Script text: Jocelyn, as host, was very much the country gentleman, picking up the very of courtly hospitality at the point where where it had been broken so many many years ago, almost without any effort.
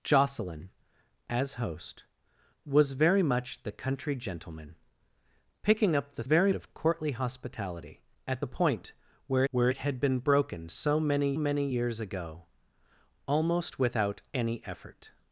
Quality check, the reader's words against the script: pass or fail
pass